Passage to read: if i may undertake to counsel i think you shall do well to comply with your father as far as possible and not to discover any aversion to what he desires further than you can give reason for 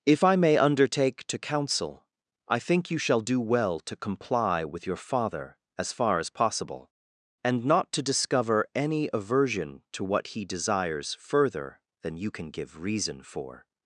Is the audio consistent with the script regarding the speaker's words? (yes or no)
yes